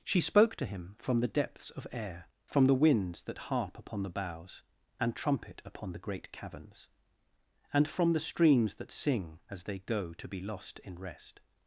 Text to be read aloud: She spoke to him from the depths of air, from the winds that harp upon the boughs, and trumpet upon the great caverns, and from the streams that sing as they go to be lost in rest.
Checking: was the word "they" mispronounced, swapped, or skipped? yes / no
no